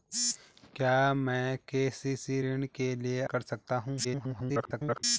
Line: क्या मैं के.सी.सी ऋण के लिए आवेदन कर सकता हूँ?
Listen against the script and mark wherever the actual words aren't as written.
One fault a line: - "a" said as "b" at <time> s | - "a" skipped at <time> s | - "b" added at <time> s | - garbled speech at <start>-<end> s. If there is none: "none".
- "आवेदन" skipped at 3.2 s
- garbled speech at 4.0-5.0 s